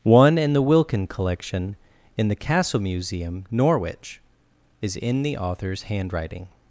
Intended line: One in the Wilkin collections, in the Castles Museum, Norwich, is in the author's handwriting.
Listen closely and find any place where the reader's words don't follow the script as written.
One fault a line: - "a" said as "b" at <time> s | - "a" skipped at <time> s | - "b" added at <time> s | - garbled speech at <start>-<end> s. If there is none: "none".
- "collections" said as "collection" at 1.1 s
- "Castles" said as "Castle" at 2.4 s